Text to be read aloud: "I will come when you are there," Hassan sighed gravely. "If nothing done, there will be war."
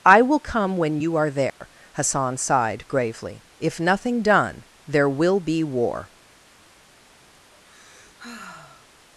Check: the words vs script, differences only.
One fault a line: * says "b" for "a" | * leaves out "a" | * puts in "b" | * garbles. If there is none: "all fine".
all fine